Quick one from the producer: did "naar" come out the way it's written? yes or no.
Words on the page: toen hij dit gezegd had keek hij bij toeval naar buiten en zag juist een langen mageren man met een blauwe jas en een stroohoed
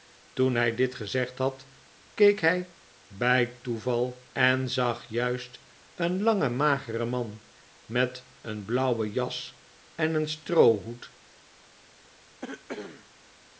no